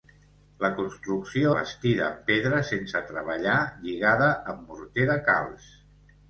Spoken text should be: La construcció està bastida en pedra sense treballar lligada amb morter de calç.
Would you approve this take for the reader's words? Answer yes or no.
no